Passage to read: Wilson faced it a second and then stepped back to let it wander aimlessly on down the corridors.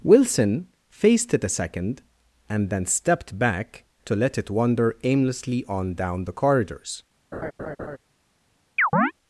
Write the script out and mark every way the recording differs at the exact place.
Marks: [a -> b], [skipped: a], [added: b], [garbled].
Wilson faced it a second and then stepped back to let it wander aimlessly on down the corridors.